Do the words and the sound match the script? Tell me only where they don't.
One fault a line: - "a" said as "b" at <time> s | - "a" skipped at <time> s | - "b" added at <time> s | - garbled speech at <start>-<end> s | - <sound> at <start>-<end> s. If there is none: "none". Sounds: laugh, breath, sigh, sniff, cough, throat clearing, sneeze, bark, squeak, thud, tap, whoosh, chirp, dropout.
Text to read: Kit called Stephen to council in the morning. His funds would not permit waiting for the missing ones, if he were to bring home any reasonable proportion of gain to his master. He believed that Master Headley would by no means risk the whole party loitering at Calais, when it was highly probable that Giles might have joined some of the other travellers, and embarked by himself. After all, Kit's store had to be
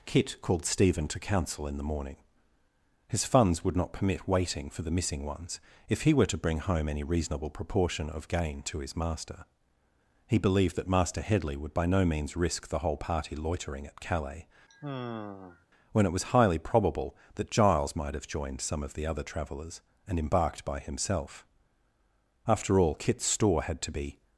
- sigh at 14.7-15.7 s